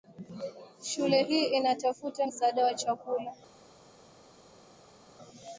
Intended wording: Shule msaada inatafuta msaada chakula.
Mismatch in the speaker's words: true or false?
true